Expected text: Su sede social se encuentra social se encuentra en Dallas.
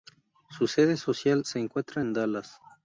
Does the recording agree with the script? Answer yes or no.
no